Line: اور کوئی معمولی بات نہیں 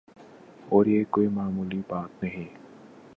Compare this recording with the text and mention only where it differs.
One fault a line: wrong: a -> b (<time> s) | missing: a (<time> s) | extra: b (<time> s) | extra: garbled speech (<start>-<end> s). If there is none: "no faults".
extra: یہ (0.8 s)